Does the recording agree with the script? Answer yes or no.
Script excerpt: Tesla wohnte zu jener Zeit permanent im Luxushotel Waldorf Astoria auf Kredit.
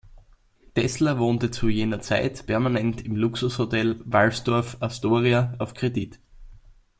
yes